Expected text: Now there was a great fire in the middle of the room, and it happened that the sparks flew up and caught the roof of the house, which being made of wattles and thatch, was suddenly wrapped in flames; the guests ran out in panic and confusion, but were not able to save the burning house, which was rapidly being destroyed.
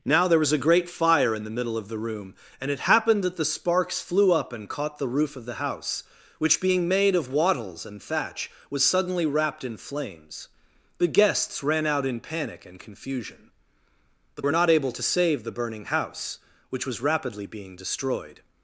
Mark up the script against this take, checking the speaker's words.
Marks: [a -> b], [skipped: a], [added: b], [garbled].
Now there was a great fire in the middle of the room, and it happened that the sparks flew up and caught the roof of the house, which being made of wattles and thatch, was suddenly wrapped in flames; the guests ran out in panic and confusion, but were not able to save the burning house, which was rapidly being destroyed.